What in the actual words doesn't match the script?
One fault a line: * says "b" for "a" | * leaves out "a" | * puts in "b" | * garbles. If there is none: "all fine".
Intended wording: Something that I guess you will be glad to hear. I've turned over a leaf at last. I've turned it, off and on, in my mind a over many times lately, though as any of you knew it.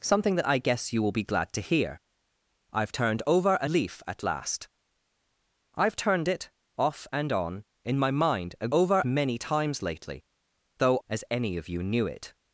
all fine